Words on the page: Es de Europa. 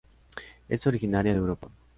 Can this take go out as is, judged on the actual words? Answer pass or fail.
fail